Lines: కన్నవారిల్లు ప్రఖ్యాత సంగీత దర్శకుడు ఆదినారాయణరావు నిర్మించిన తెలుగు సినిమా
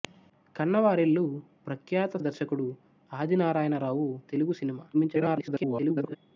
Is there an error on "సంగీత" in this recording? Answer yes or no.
yes